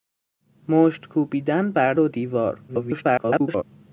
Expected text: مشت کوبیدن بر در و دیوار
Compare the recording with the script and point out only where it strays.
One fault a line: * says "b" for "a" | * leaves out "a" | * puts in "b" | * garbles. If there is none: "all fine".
* leaves out "در"
* garbles